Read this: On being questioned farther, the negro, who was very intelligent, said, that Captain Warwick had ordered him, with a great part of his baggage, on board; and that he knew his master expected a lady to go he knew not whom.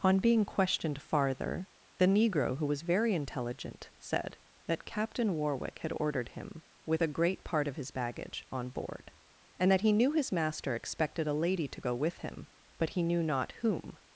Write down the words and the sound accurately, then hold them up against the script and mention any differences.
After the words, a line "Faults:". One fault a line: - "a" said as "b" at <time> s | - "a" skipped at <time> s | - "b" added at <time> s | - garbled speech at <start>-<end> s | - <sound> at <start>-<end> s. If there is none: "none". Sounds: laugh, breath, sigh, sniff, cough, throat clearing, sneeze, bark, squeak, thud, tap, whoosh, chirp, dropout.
On being questioned farther, the negro, who was very intelligent, said, that Captain Warwick had ordered him, with a great part of his baggage, on board; and that he knew his master expected a lady to go with him, but he knew not whom.
Faults:
- "with him but" added at 11.9 s